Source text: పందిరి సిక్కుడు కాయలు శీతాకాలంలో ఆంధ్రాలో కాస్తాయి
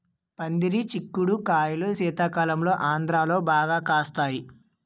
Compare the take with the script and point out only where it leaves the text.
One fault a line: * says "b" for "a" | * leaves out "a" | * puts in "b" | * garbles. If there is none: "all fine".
* puts in "బాగా"